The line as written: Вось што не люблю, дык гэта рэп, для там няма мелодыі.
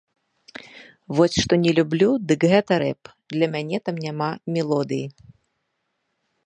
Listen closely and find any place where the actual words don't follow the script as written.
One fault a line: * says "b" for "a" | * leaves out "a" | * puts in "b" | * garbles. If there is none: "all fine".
* puts in "мяне"